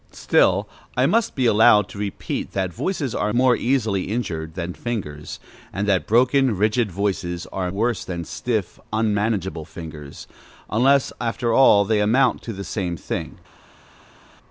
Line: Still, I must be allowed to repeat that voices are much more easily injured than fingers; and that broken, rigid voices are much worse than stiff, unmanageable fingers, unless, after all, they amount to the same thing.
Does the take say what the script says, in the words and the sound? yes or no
no